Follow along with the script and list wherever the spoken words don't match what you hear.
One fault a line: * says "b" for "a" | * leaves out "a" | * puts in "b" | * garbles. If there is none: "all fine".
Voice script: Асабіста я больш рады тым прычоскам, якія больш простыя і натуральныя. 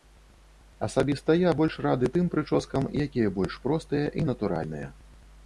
all fine